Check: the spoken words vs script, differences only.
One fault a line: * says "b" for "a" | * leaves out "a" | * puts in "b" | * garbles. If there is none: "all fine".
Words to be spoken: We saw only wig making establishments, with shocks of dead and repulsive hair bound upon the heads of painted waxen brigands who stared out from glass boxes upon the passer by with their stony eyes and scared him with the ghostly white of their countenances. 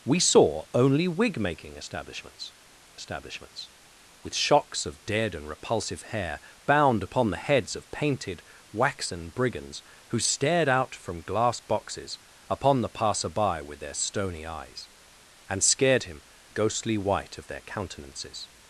* puts in "establishments"
* leaves out "with the"